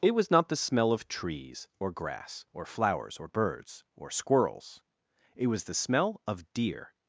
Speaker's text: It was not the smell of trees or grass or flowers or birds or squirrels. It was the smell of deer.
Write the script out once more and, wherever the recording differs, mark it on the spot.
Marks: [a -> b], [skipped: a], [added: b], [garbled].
It was not the smell of trees or grass or flowers or birds or squirrels. It was the smell of deer.